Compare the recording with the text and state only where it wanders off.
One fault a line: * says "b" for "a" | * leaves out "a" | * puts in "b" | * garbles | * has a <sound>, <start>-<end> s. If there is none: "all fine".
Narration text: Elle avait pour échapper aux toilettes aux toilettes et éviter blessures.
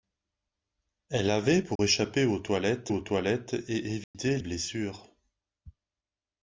* has a dropout, 1.8-1.8 s
* has a dropout, 4.0-4.1 s